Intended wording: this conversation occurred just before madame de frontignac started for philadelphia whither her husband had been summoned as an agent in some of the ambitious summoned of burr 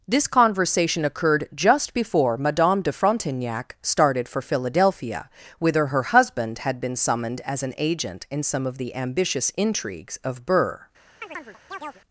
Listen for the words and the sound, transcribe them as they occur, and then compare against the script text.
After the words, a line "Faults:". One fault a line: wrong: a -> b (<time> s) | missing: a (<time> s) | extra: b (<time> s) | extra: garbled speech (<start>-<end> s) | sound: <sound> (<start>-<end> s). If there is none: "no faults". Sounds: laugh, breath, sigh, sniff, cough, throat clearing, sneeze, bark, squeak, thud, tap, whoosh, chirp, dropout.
this conversation occurred just before madame de frontignac started for philadelphia whither her husband had been summoned as an agent in some of the ambitious intrigues of burr
Faults:
wrong: summoned -> intrigues (9.6 s)
sound: chirp (11.2-12.0 s)